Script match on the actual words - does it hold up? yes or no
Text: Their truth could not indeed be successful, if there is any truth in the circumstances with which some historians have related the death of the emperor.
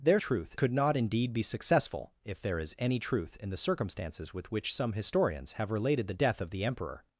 yes